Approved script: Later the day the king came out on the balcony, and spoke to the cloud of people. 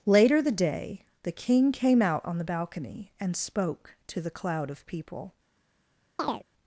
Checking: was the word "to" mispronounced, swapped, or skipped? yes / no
no